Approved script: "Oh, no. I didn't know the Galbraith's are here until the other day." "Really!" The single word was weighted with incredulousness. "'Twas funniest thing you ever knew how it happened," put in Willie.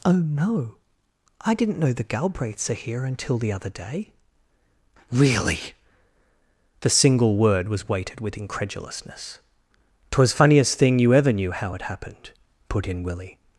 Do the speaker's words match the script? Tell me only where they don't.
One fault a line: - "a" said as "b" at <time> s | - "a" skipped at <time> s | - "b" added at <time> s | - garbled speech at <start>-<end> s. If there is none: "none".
none